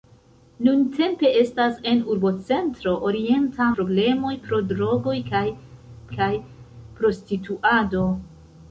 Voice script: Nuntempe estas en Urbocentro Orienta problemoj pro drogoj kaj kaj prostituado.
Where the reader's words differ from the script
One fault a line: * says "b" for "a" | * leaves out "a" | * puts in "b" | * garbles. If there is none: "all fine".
all fine